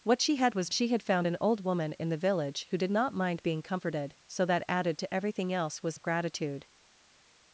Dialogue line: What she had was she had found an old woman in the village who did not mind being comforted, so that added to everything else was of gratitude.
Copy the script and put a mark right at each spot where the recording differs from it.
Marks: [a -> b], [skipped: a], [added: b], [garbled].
What she had was she had found an old woman in the village who did not mind being comforted, so that added to everything else was of gratitude.